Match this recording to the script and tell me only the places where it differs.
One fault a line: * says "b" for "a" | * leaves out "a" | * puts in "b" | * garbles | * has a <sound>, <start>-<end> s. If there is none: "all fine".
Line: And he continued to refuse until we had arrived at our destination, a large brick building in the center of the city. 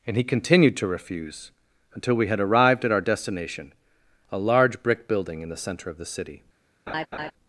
* has a laugh, 6.9-7.3 s